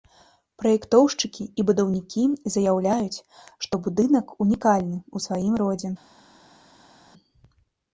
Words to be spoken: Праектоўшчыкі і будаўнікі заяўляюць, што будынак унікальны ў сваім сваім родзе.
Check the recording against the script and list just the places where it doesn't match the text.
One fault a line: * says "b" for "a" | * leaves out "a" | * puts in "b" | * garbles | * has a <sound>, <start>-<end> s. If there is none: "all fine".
* leaves out "сваім"